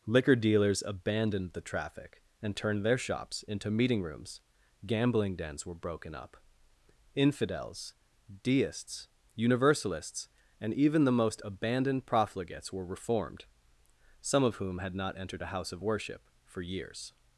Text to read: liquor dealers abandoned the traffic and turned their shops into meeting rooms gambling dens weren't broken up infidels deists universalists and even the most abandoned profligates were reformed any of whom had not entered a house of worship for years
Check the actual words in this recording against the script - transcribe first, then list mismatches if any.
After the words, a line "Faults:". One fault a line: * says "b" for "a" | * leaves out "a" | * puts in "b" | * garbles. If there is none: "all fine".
liquor dealers abandoned the traffic and turned their shops into meeting rooms gambling dens were broken up infidels deists universalists and even the most abandoned profligates were reformed some of whom had not entered a house of worship for years
Faults:
* says "were" for "weren't"
* says "some" for "any"